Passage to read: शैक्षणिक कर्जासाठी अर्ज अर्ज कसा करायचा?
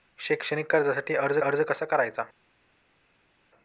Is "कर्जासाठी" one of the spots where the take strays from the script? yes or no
no